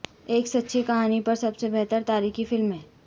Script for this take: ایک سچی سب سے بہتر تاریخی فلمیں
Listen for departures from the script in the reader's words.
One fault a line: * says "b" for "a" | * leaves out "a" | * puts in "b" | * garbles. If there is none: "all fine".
* puts in "کہانی پر"